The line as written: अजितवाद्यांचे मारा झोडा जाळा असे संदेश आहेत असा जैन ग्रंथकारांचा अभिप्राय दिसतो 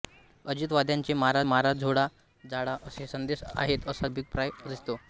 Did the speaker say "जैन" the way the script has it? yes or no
no